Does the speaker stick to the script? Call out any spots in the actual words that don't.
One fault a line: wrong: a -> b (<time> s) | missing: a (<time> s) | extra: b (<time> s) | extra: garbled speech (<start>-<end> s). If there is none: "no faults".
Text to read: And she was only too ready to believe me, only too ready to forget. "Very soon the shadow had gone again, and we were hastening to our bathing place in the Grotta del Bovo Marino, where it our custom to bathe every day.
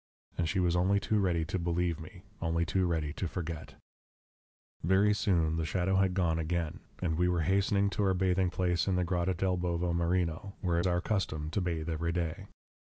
no faults